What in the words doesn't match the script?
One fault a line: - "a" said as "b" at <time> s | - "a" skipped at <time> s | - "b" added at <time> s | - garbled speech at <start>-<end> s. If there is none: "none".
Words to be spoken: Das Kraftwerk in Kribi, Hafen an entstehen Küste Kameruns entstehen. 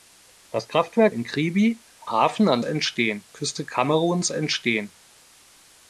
none